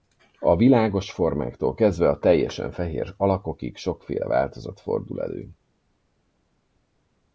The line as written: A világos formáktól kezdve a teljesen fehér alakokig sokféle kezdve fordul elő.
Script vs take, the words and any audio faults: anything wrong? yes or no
yes